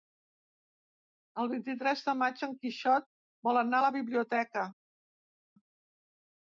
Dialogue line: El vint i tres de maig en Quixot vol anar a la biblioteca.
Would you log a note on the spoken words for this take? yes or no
no